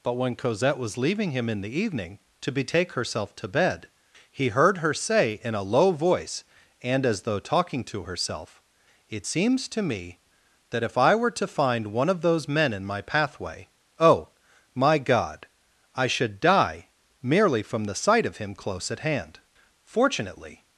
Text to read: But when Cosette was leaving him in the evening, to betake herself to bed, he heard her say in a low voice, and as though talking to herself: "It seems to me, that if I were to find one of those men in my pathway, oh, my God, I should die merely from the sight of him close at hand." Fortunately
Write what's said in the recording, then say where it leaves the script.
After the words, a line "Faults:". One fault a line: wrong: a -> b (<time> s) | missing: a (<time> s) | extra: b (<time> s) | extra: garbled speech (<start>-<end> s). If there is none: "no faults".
But when Cosette was leaving him in the evening, to betake herself to bed, he heard her say in a low voice, and as though talking to herself: "It seems to me, that if I were to find one of those men in my pathway, oh, my God, I should die merely from the sight of him close at hand." Fortunately
Faults:
no faults